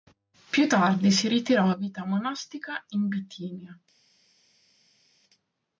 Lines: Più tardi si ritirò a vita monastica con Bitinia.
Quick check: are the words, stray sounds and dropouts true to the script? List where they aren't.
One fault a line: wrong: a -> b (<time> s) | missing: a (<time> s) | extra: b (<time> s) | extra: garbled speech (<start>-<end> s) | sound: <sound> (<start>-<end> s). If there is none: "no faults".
wrong: con -> in (2.9 s)